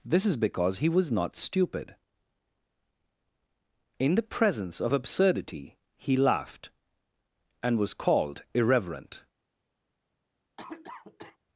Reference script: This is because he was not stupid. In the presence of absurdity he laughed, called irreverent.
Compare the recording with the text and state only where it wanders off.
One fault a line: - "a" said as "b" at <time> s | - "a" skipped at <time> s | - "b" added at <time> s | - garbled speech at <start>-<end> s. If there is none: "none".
- "and was" added at 7.6 s